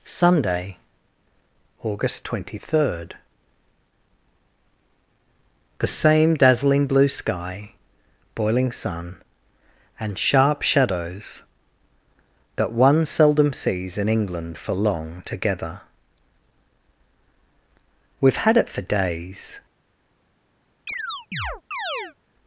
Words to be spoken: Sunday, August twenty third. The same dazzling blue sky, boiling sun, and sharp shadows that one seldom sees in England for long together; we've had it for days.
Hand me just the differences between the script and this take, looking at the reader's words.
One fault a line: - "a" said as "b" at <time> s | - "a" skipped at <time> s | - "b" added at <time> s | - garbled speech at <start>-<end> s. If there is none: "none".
none